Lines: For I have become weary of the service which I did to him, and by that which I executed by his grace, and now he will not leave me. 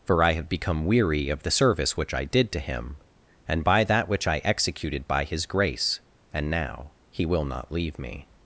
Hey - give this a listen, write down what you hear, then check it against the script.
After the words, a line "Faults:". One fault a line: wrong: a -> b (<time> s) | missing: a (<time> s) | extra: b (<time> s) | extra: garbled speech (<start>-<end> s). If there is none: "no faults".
For I have become weary of the service which I did to him, and by that which I executed by his grace, and now he will not leave me.
Faults:
no faults